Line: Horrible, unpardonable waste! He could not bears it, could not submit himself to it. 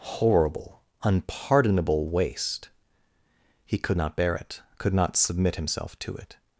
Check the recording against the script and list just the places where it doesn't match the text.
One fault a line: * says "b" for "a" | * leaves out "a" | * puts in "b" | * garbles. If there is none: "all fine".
* says "bear" for "bears"